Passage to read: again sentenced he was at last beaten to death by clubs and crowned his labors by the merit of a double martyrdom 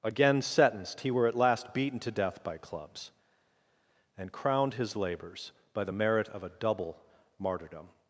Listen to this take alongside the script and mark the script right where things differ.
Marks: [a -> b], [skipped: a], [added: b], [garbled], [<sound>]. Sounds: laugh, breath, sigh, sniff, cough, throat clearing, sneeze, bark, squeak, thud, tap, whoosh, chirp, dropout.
again sentenced he [was -> were] at last beaten to death by clubs and crowned his labors by the merit of a double martyrdom